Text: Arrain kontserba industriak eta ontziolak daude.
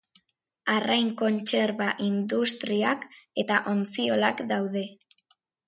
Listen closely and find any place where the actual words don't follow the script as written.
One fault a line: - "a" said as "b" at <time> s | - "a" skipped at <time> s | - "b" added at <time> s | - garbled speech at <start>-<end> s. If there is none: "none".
none